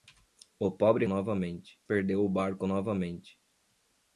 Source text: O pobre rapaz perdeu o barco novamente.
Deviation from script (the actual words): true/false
true